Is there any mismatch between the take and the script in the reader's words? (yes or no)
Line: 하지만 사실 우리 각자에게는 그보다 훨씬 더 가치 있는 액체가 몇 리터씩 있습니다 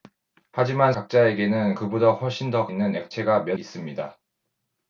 yes